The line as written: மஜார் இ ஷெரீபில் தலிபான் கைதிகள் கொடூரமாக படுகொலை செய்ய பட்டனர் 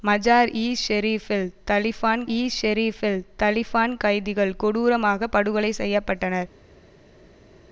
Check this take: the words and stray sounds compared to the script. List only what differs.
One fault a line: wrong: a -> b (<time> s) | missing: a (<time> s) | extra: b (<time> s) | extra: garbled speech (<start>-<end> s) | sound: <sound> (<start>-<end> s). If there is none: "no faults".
extra: இ ஷெரீபில் தலிபான் (2.3 s)